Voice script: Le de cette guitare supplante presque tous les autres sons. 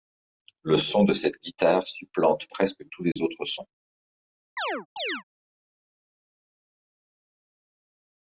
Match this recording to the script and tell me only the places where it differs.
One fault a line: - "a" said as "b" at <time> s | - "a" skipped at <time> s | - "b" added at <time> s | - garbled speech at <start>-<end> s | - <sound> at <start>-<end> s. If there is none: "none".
- "son" added at 0.8 s
- dropout at 3.1-3.2 s
- chirp at 4.6-5.2 s